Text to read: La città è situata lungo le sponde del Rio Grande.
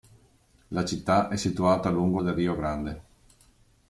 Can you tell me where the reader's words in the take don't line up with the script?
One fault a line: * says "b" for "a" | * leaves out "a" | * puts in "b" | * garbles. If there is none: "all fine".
* leaves out "le sponde"